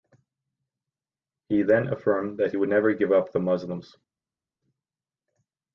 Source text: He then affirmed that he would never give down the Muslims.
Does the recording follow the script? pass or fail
fail